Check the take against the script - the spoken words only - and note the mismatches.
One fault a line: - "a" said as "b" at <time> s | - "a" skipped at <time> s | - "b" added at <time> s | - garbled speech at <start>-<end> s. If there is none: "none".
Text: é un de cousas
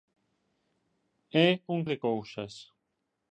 none